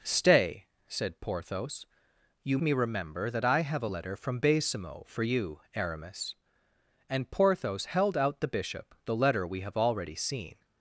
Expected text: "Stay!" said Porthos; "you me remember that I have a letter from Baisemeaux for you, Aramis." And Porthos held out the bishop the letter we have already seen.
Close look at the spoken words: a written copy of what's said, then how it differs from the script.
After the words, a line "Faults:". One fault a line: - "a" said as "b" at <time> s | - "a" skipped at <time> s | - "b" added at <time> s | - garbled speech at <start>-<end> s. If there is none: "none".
"Stay!" said Porthos; "you me remember that I have a letter from Baisemeaux for you, Aramis." And Porthos held out the bishop the letter we have already seen.
Faults:
none